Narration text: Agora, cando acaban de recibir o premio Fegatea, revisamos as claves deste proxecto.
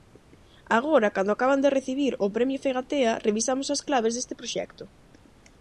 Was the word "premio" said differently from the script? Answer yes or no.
no